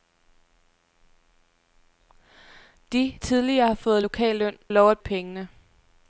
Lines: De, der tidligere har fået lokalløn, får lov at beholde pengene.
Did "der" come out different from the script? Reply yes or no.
yes